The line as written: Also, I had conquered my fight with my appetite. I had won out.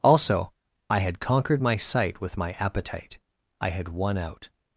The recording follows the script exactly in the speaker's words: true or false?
false